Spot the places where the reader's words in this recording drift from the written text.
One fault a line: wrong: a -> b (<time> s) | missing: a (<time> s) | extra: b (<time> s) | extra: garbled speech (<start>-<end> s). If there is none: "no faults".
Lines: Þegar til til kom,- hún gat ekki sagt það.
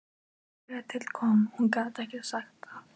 missing: til (1.1 s)